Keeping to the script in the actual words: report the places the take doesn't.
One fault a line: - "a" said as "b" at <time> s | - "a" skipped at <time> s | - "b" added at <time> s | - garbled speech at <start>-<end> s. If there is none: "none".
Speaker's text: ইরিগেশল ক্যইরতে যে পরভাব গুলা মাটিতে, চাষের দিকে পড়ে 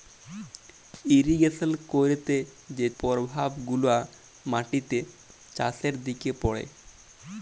none